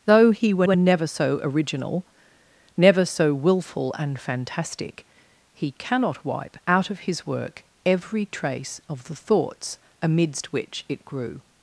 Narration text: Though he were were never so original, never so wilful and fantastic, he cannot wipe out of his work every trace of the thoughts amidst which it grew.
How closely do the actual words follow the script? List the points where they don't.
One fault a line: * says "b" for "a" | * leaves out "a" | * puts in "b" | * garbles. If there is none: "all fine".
all fine